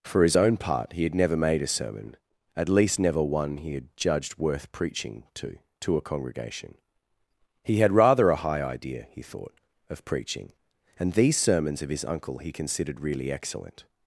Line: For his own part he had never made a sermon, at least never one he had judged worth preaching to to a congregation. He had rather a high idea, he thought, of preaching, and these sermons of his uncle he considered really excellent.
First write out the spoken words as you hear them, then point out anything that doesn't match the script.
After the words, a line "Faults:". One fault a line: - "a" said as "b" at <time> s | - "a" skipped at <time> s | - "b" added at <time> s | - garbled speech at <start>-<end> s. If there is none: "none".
For his own part he had never made a sermon, at least never one he had judged worth preaching to to a congregation. He had rather a high idea, he thought, of preaching, and these sermons of his uncle he considered really excellent.
Faults:
none